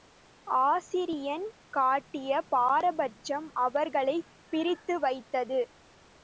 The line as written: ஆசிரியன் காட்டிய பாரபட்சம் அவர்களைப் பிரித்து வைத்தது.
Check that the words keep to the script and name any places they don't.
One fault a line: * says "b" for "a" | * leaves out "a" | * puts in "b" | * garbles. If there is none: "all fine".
all fine